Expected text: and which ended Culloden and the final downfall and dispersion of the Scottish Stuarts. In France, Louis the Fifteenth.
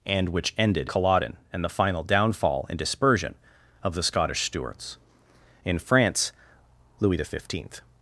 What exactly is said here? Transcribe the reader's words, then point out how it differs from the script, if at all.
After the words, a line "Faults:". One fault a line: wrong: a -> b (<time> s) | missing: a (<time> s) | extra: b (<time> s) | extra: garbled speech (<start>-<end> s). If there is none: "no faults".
and which ended Culloden and the final downfall and dispersion of the Scottish Stuarts. In France, Louis the Fifteenth.
Faults:
no faults